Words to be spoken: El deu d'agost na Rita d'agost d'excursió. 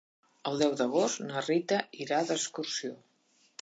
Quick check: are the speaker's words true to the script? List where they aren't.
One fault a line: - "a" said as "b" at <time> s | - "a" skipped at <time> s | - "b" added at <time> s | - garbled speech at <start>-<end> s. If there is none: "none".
- "d'agost" said as "irà" at 2.1 s